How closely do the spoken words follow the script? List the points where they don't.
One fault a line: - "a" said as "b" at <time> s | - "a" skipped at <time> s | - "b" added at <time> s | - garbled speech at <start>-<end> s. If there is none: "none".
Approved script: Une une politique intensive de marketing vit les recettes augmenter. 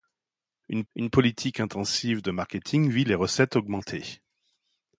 none